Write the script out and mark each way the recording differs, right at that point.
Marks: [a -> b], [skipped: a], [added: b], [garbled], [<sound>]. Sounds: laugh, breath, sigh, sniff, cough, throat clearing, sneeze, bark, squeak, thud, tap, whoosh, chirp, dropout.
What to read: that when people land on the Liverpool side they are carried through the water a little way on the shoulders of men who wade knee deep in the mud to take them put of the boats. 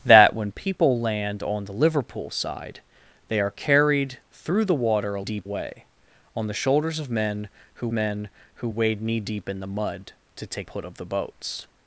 that when people land on the Liverpool side they are carried through the water a [little -> deep] way on the shoulders of men who [added: men who] wade knee deep in the mud to take [skipped: them] put of the boats.